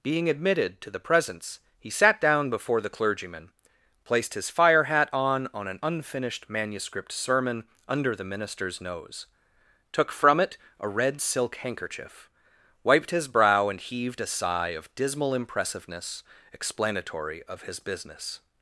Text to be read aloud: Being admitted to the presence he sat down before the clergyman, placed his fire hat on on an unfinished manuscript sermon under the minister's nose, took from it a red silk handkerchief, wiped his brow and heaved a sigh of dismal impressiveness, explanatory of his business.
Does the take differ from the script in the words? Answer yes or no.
no